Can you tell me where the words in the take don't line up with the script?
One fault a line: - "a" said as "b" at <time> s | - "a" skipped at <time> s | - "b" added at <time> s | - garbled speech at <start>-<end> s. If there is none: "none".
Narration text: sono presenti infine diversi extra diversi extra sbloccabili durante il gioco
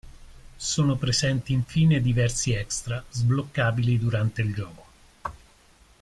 - "diversi extra" skipped at 3.0 s